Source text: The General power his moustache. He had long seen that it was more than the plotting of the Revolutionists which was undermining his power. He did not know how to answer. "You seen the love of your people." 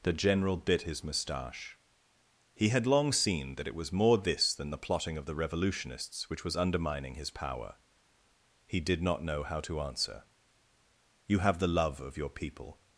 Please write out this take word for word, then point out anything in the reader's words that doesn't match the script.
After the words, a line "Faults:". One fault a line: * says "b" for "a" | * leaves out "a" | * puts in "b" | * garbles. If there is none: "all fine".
The General bit his moustache. He had long seen that it was more this than the plotting of the Revolutionists which was undermining his power. He did not know how to answer. "You have the love of your people."
Faults:
* says "bit" for "power"
* puts in "this"
* says "have" for "seen"